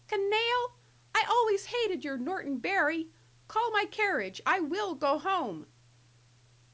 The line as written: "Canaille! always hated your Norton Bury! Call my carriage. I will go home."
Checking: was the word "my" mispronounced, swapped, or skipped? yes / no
no